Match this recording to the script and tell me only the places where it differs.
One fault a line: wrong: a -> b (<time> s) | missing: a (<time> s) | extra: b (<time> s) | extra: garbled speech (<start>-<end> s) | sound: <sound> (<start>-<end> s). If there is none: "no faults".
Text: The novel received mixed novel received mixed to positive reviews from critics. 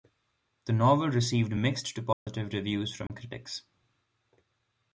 missing: novel received mixed (1.9 s)
sound: dropout (2.1-2.3 s)
sound: dropout (3.1-3.1 s)